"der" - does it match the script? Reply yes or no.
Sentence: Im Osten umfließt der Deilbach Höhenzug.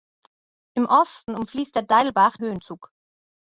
yes